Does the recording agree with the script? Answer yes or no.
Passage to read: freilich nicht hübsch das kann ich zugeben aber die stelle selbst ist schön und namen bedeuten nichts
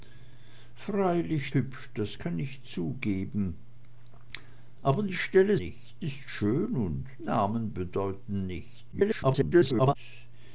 no